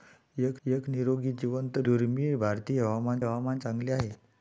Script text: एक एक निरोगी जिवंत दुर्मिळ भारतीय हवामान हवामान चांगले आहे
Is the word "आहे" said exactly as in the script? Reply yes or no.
yes